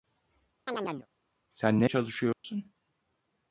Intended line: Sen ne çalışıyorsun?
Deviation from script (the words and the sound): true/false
true